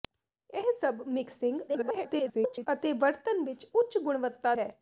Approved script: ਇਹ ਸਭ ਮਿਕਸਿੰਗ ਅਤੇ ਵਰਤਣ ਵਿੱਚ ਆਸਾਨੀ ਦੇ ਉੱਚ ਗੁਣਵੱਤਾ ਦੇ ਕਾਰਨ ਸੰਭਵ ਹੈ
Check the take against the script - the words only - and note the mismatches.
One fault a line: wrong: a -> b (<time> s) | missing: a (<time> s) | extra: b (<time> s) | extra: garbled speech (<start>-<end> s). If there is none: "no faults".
extra: garbled speech (1.7-2.7 s)
missing: ਆਸਾਨੀ ਦੇ (3.7 s)
missing: ਦੇ ਕਾਰਨ ਸੰਭਵ (4.5 s)